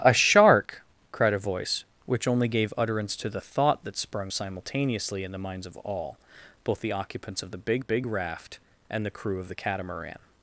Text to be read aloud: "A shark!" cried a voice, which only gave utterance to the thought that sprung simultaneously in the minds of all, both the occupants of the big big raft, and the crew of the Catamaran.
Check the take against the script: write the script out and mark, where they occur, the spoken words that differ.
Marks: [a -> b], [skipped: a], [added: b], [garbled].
"A shark!" cried a voice, which only gave utterance to the thought that sprung simultaneously in the minds of all, both the occupants of the big big raft, and the crew of the Catamaran.